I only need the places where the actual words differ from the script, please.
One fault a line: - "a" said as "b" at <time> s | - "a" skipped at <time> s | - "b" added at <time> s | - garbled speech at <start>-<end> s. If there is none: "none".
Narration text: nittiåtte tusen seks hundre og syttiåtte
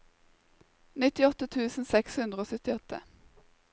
none